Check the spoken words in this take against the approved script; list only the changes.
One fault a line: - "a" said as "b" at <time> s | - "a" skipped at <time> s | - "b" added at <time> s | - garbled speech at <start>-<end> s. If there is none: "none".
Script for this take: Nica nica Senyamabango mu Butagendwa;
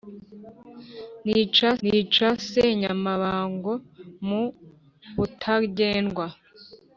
none